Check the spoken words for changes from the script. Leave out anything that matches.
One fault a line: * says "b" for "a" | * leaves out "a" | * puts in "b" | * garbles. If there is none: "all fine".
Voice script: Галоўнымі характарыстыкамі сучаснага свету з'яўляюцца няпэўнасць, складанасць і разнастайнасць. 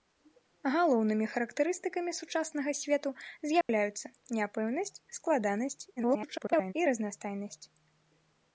* garbles